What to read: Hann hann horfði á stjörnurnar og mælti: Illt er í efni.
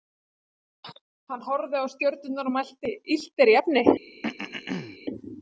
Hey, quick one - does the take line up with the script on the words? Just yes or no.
no